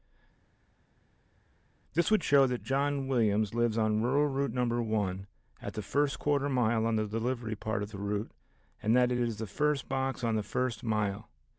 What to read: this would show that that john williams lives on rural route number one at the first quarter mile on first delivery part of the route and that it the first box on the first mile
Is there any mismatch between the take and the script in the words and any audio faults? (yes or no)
yes